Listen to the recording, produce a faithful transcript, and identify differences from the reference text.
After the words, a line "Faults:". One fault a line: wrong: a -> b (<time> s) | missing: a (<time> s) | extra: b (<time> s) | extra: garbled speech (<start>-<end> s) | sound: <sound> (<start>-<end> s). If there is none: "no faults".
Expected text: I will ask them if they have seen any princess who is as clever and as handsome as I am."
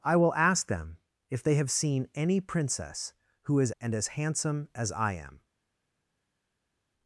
I will ask them if they have seen any princess who is and as handsome as I am."
Faults:
missing: as clever (3.7 s)